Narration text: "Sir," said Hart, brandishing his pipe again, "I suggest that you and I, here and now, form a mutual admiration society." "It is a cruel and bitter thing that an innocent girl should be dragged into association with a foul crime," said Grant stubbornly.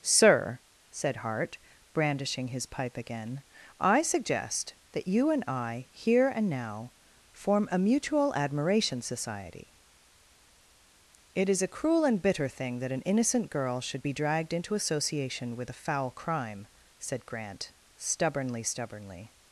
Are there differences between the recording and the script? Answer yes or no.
yes